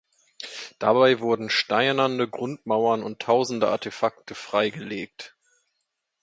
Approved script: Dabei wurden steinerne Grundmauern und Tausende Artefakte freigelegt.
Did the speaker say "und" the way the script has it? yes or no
yes